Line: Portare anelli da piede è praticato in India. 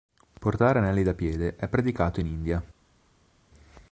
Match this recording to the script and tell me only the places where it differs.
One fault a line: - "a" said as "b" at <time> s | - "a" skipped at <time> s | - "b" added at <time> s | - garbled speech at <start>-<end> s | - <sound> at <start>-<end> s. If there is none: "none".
none